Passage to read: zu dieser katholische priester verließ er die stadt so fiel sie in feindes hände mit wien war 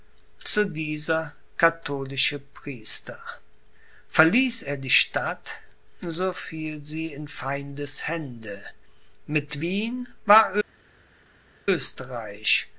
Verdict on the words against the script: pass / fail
pass